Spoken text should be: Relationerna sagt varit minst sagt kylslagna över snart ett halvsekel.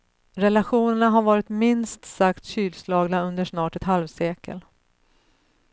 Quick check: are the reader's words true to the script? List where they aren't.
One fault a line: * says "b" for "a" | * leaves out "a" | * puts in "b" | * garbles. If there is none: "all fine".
* says "har" for "sagt"
* says "under" for "över"